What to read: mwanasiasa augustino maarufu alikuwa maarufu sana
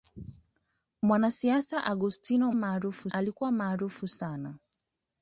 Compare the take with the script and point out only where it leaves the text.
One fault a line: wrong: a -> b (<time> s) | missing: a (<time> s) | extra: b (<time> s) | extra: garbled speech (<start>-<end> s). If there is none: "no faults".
no faults